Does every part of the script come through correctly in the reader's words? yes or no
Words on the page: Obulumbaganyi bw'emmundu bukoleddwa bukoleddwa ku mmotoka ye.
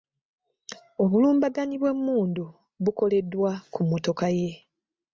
no